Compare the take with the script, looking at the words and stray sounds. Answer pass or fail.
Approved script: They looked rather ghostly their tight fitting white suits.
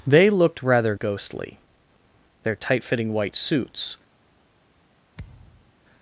fail